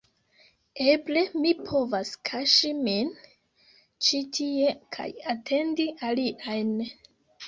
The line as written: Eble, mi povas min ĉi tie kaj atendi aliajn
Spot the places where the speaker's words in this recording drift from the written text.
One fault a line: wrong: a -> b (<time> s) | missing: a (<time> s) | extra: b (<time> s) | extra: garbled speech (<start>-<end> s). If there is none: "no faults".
extra: kaŝi (2.3 s)